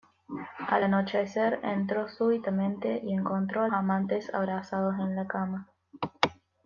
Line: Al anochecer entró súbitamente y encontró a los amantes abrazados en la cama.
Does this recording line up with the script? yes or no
no